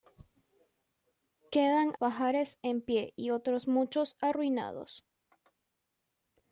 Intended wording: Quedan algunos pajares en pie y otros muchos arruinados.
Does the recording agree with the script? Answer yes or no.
no